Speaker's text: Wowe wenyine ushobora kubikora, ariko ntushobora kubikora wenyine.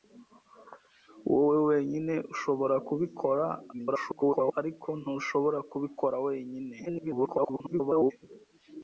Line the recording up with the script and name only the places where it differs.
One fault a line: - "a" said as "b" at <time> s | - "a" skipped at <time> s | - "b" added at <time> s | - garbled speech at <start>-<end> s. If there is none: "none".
- garbled speech at 3.7-4.5 s
- garbled speech at 6.9-8.1 s